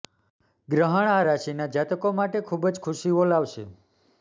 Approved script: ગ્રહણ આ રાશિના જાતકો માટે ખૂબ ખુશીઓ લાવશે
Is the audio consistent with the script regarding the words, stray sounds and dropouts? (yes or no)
no